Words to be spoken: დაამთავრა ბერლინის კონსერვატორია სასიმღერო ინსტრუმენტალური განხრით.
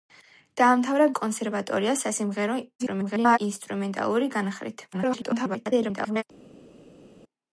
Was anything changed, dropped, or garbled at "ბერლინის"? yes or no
yes